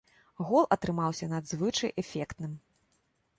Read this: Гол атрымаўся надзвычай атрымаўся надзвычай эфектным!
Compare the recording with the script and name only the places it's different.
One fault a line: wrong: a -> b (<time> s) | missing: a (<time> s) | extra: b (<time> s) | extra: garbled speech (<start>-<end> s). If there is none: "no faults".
missing: атрымаўся надзвычай (1.9 s)